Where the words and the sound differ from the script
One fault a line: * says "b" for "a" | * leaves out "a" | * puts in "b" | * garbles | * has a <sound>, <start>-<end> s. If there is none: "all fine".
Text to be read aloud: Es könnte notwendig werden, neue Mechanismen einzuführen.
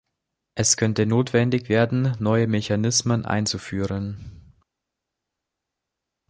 all fine